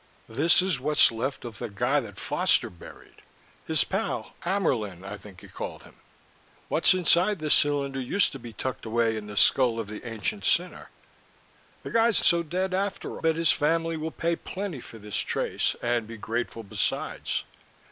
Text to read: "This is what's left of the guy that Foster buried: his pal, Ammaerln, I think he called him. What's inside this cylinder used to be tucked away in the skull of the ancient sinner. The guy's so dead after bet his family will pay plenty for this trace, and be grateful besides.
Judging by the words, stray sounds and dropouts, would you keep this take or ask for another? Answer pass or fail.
pass